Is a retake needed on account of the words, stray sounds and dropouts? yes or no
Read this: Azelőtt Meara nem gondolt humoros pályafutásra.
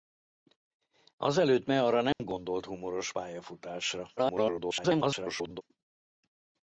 yes